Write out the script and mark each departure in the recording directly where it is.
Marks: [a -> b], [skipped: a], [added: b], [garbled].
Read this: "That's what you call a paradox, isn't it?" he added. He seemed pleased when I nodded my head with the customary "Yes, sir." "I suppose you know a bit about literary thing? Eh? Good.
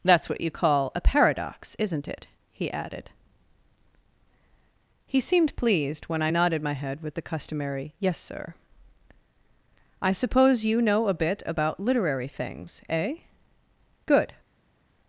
"That's what you call a paradox, isn't it?" he added. He seemed pleased when I nodded my head with the customary "Yes, sir." "I suppose you know a bit about literary [thing? -> things] Eh? Good.